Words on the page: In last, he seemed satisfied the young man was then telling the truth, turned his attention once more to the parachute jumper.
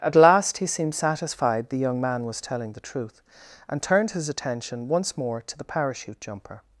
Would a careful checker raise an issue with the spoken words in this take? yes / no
yes